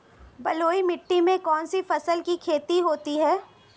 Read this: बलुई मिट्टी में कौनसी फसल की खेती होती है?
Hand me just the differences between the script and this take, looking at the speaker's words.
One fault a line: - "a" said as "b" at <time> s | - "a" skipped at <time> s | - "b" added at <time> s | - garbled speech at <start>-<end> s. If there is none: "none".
none